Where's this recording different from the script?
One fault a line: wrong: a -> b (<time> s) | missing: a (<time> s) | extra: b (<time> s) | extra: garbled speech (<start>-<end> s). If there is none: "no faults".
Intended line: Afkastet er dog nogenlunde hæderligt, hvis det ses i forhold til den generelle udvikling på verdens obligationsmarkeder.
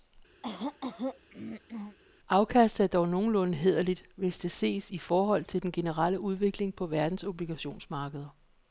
no faults